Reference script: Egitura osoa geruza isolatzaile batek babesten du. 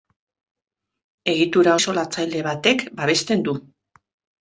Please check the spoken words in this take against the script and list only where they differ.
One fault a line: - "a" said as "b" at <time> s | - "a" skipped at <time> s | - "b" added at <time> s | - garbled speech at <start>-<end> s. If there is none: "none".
- "osoa geruza" skipped at 1.8 s